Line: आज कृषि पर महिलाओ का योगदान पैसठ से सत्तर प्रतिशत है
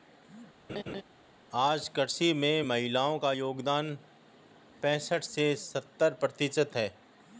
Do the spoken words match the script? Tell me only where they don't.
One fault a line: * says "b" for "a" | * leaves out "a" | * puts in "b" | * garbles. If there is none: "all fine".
* says "में" for "पर"